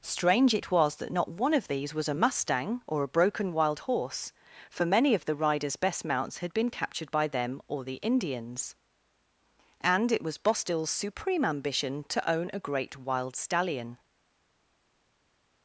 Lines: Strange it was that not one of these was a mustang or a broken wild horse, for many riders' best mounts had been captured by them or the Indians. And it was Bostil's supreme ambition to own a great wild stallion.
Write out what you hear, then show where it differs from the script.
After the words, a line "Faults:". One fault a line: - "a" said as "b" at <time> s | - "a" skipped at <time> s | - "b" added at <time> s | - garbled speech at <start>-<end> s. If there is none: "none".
Strange it was that not one of these was a mustang or a broken wild horse, for many of the riders' best mounts had been captured by them or the Indians. And it was Bostil's supreme ambition to own a great wild stallion.
Faults:
- "of the" added at 5.1 s